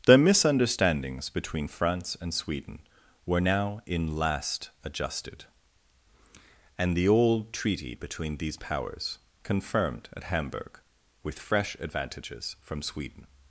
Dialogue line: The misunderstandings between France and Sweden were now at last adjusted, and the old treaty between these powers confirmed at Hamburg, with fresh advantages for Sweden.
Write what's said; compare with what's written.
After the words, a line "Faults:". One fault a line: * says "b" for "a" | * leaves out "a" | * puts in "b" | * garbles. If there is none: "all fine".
The misunderstandings between France and Sweden were now in last adjusted, and the old treaty between these powers confirmed at Hamburg, with fresh advantages from Sweden.
Faults:
* says "in" for "at"
* says "from" for "for"